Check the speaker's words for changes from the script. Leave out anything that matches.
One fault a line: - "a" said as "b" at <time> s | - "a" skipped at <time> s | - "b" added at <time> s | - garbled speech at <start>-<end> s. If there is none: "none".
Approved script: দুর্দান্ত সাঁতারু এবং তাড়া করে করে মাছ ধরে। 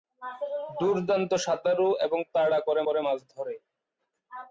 none